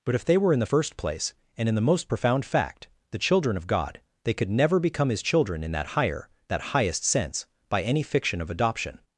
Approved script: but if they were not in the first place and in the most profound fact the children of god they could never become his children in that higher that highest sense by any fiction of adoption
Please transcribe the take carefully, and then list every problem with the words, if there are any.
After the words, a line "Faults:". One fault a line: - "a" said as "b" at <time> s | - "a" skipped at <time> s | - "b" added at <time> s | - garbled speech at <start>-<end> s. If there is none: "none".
but if they were in the first place and in the most profound fact the children of god they could never become his children in that higher that highest sense by any fiction of adoption
Faults:
- "not" skipped at 0.5 s